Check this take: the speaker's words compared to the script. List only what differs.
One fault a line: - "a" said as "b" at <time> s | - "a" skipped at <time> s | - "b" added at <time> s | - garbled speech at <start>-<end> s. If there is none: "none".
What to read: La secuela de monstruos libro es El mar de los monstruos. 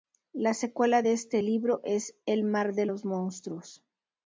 - "monstruos" said as "este" at 1.1 s